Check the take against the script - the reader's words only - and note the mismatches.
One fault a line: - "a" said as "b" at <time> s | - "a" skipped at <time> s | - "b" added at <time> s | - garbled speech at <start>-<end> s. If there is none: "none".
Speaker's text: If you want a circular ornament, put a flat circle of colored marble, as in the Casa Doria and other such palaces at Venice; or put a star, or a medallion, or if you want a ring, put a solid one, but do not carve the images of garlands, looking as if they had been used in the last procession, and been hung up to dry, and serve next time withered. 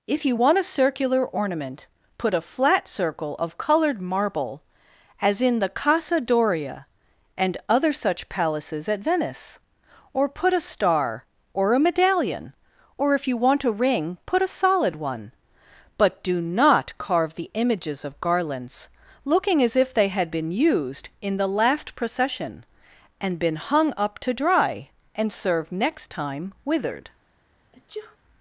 none